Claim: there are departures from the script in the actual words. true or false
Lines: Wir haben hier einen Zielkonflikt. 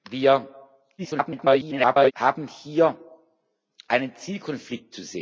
true